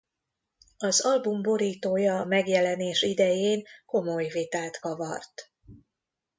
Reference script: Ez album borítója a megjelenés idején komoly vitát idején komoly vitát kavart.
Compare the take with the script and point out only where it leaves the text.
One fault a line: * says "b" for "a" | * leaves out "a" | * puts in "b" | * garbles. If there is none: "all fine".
* says "Az" for "Ez"
* leaves out "idején komoly vitát"